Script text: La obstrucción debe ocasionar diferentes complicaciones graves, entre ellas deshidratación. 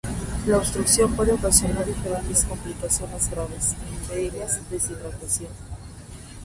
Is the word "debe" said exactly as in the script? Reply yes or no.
no